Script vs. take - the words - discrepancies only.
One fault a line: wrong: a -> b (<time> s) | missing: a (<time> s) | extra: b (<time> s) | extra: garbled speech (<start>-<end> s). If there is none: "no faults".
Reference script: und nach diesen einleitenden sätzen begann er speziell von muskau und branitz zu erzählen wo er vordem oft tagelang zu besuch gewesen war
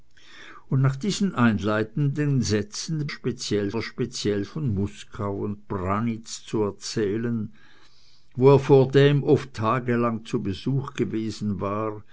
wrong: begann -> speziell (3.1 s)